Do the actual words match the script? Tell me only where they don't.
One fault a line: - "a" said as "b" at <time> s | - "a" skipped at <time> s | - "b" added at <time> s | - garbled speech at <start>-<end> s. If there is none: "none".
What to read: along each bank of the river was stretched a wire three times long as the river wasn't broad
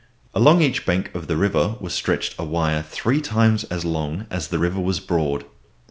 - "as" added at 3.6 s
- "wasn't" said as "was" at 4.8 s